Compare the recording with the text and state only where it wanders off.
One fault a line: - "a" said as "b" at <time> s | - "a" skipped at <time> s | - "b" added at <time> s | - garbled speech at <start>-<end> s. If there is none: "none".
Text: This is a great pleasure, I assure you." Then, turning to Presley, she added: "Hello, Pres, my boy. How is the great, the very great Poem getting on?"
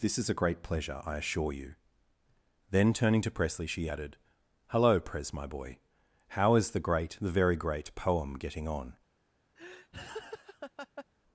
none